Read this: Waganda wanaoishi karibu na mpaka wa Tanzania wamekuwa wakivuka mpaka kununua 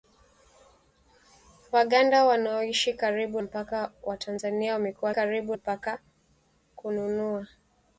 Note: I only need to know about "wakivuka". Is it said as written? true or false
false